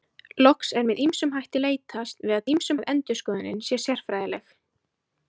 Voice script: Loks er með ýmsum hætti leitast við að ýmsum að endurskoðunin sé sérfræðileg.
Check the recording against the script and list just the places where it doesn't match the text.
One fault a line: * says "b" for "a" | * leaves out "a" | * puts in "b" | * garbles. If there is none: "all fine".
all fine